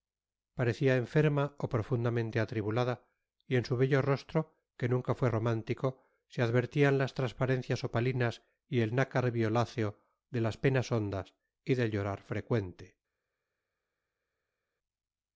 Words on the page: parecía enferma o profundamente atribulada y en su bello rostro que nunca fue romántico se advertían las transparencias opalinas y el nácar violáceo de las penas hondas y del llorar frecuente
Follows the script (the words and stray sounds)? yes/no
yes